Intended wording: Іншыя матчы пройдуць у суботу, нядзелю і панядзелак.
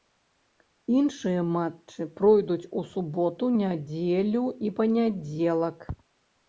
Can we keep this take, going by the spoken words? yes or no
yes